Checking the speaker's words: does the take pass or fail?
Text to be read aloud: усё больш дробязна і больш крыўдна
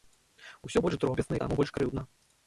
fail